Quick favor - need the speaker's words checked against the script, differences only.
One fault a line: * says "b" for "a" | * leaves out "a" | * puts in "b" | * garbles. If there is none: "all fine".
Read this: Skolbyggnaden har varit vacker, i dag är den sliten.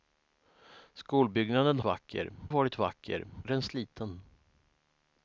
* says "vacker" for "har"
* leaves out "i dag"